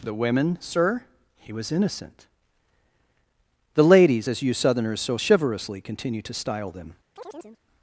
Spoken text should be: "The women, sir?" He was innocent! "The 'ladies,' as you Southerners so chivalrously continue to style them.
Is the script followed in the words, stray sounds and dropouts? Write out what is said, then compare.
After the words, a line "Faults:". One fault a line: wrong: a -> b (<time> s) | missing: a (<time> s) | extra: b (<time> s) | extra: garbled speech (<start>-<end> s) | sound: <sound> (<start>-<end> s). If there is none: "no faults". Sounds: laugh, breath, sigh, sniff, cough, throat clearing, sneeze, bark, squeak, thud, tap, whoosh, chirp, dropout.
"The women, sir?" He was innocent! "The 'ladies,' as you Southerners so chivalrously continue to style them.
Faults:
sound: chirp (7.2-7.6 s)